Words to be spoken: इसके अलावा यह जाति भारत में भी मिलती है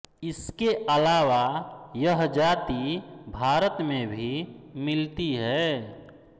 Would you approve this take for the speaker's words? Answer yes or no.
yes